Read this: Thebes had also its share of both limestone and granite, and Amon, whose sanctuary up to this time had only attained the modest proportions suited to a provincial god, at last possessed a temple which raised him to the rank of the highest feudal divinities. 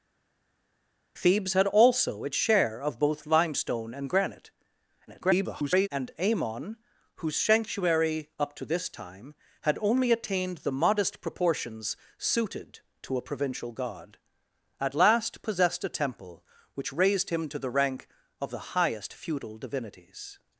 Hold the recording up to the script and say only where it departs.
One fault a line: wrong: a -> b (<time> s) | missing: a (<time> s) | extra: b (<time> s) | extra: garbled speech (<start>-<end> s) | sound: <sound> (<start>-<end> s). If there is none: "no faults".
extra: garbled speech (5.1-5.9 s)